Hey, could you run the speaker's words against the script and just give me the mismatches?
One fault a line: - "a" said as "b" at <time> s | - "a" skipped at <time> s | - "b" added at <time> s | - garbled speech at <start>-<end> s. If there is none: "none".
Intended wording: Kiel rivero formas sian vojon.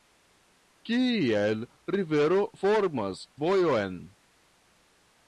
- "sian" skipped at 3.3 s